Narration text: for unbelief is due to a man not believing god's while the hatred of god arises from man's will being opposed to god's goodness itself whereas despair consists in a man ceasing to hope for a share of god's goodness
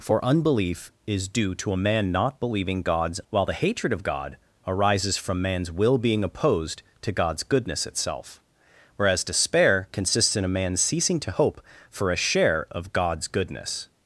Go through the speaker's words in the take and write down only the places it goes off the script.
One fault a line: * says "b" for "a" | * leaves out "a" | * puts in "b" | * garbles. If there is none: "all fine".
all fine